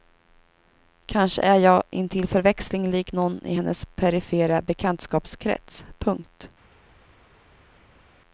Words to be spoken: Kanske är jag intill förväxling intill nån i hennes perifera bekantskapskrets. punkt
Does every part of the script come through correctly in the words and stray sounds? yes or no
no